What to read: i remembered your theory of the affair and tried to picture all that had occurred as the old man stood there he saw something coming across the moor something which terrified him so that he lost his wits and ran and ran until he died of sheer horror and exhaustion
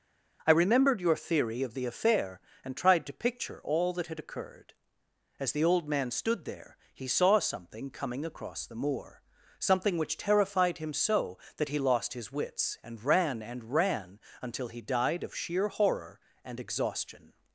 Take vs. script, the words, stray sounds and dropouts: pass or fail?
pass